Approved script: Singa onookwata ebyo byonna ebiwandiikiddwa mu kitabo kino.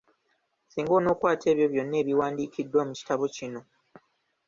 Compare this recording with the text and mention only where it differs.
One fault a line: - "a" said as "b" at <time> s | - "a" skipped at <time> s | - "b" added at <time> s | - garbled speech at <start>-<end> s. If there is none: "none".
none